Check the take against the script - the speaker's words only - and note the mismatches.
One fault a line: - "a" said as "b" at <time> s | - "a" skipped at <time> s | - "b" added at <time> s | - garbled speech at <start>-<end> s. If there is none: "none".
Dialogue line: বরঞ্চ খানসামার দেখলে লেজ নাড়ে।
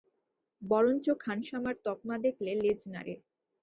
- "তকমা" added at 1.9 s